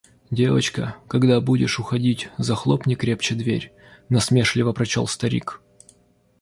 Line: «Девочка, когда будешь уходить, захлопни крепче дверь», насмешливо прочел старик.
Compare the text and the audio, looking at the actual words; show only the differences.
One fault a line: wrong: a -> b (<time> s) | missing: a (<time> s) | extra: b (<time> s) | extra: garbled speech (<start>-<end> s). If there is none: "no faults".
no faults